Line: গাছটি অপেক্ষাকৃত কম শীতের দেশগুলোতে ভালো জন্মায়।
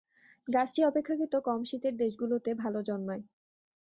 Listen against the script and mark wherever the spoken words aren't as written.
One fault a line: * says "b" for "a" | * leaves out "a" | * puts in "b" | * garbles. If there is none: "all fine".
all fine